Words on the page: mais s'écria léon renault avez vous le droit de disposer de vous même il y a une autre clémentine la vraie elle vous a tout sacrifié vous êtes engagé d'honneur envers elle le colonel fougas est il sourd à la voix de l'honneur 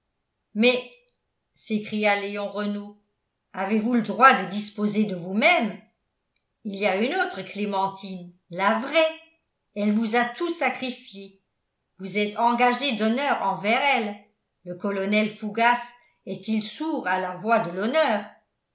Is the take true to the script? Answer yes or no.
yes